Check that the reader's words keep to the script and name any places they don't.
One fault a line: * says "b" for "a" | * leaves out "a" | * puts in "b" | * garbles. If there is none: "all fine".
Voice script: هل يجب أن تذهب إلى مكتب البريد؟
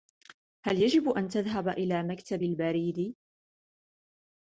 all fine